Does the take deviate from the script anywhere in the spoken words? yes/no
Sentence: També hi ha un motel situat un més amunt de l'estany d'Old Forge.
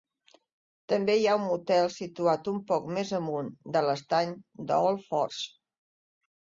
yes